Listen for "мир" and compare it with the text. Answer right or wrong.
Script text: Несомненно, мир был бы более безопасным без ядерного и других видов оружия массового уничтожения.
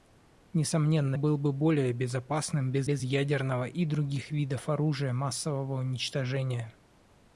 wrong